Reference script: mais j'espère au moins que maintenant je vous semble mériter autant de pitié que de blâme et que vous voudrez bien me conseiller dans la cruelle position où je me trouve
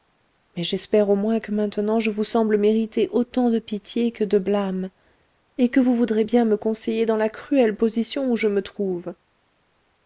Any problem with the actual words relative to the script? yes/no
no